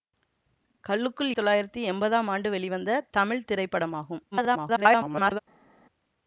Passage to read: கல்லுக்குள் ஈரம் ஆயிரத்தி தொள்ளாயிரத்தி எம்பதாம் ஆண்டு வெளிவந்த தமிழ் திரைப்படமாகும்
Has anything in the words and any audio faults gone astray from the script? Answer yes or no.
yes